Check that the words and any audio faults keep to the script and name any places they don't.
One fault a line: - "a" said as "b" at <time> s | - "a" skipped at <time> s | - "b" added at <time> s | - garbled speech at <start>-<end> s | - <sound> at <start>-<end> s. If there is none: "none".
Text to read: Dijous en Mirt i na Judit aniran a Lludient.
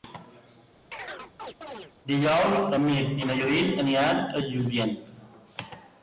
- chirp at 0.9-1.9 s